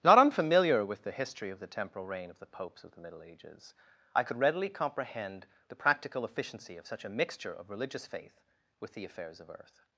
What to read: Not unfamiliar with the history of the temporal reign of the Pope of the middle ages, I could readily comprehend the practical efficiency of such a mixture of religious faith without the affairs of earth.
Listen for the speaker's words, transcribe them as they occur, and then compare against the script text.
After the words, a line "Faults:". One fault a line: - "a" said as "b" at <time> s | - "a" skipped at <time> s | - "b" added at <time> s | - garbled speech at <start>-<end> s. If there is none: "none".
Not unfamiliar with the history of the temporal reign of the Popes of the middle ages, I could readily comprehend the practical efficiency of such a mixture of religious faith with the affairs of earth.
Faults:
- "Pope" said as "Popes" at 2.5 s
- "without" said as "with" at 8.8 s